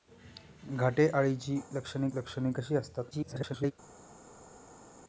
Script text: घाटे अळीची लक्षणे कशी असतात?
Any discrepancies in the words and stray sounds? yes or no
yes